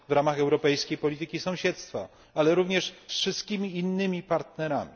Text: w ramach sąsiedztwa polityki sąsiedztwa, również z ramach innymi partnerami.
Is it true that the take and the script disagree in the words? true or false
true